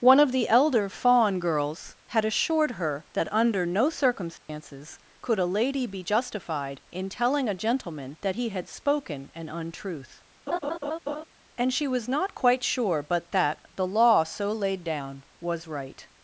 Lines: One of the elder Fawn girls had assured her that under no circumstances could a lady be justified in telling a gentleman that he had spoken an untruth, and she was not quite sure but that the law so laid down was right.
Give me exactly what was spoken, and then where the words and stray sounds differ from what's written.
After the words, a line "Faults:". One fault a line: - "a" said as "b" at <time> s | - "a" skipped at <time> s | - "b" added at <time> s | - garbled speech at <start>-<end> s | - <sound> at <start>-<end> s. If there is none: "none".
One of the elder Fawn girls had assured her that under no circumstances could a lady be justified in telling a gentleman that he had spoken an untruth, and she was not quite sure but that the law so laid down was right.
Faults:
- dropout at 4.4-4.5 s
- laugh at 10.5-11.2 s